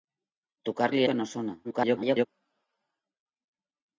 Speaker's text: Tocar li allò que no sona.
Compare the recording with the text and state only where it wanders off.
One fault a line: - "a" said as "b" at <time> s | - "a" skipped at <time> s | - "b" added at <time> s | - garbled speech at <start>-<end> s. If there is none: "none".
- "allò" skipped at 1.0 s
- garbled speech at 1.6-2.3 s